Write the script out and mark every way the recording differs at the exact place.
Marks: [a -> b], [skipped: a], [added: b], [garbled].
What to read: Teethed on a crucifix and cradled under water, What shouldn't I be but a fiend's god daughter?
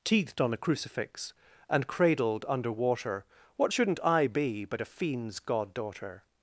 Teethed on a crucifix and cradled under water, What shouldn't I be but a fiend's god daughter?